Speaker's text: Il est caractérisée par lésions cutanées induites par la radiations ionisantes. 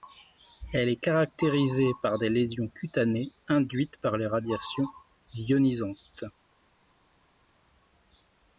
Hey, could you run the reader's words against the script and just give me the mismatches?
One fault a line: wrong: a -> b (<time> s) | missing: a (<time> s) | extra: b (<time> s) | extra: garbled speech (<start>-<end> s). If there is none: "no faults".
wrong: Il -> Elle (0.7 s)
extra: des (2.2 s)
wrong: la -> les (4.2 s)